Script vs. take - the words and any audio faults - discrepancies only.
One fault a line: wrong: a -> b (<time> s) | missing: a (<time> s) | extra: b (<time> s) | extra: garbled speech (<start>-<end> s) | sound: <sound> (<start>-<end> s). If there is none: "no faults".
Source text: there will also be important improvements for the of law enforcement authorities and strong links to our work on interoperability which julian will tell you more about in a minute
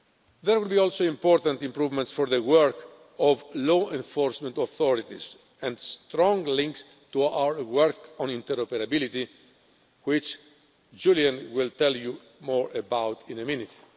extra: work (2.4 s)